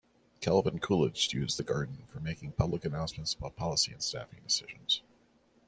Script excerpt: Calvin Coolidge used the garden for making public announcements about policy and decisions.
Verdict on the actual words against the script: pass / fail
fail